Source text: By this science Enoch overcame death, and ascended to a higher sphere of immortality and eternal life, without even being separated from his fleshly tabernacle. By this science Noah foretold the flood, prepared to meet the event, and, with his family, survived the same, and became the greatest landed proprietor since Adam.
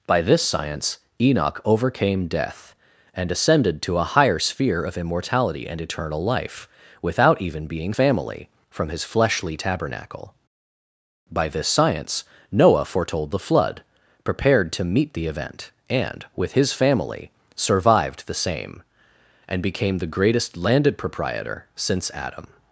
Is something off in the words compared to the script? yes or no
yes